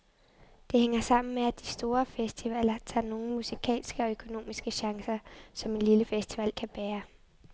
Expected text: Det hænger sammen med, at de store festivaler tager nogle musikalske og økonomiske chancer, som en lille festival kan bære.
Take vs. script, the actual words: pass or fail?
pass